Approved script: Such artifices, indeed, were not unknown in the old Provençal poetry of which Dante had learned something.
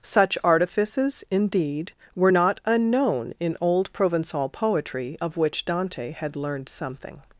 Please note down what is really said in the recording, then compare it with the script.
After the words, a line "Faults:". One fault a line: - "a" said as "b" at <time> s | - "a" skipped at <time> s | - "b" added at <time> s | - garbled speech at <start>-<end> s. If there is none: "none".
Such artifices, indeed, were not unknown in old Provençal poetry of which Dante had learned something.
Faults:
- "the" skipped at 3.6 s